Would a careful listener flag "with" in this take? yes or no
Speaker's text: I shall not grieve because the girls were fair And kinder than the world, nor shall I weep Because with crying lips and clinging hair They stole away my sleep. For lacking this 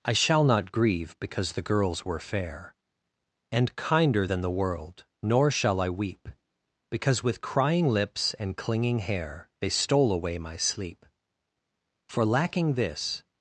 no